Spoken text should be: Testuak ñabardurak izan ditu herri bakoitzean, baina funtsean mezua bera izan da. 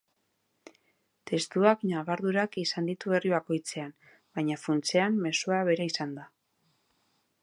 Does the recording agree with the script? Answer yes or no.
yes